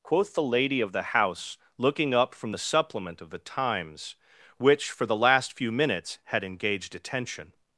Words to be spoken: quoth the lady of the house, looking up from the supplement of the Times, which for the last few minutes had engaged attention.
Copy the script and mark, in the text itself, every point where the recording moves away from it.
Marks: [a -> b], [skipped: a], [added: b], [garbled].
quoth the lady of the house, looking up from the supplement of the Times, which for the last few minutes had engaged attention.